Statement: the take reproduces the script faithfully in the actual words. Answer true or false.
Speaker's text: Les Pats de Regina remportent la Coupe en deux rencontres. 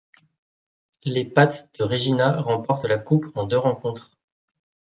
true